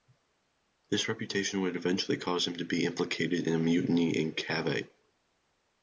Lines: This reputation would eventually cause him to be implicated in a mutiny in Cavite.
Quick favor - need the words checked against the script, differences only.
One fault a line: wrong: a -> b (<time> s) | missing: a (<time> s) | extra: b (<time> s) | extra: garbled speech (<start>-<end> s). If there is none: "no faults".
no faults